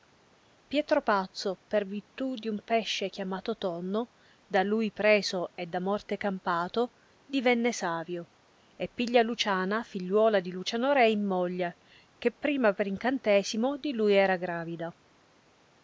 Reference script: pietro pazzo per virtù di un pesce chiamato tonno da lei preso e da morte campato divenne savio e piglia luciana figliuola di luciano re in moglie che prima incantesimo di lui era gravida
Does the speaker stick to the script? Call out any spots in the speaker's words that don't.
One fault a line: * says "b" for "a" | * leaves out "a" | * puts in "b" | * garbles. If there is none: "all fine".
* says "lui" for "lei"
* puts in "per"